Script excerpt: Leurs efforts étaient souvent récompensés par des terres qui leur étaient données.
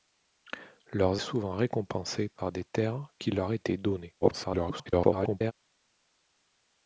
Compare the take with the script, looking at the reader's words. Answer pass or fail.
fail